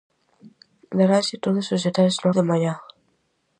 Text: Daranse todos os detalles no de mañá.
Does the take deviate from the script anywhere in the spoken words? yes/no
no